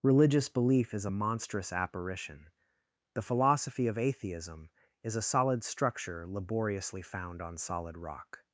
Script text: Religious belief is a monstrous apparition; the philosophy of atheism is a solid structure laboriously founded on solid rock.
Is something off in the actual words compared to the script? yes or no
yes